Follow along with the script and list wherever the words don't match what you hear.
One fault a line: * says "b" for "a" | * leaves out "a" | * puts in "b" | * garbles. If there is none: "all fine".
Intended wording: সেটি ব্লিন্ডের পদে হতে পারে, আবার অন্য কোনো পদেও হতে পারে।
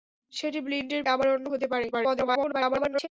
* leaves out "পদে হতে পারে"
* leaves out "কোনো পদেও"
* garbles